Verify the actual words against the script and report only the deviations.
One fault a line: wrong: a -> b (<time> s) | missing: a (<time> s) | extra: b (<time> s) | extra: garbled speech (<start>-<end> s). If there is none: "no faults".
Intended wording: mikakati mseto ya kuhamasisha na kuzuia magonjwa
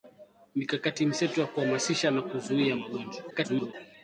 extra: garbled speech (3.3-3.7 s)